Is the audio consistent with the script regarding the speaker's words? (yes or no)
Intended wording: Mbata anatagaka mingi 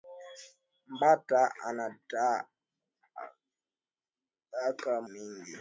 yes